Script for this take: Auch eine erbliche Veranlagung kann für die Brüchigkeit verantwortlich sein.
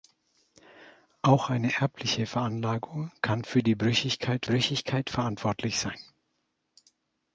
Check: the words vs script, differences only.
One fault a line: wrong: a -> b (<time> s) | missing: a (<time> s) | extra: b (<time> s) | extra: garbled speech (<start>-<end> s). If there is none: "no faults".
extra: Brüchigkeit (4.4 s)